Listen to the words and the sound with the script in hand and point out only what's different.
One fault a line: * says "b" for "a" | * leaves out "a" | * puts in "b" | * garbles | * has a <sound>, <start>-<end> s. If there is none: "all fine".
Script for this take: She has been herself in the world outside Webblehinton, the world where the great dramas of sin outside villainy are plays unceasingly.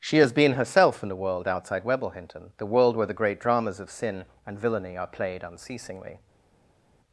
* says "and" for "outside"
* says "played" for "plays"